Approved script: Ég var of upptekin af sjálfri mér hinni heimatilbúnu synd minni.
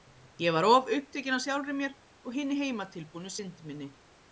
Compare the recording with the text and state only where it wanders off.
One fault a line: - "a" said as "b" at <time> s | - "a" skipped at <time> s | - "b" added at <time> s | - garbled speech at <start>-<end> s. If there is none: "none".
- "og" added at 2.2 s